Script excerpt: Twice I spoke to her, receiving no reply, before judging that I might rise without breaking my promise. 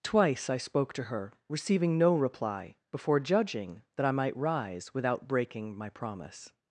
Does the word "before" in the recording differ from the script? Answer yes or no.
no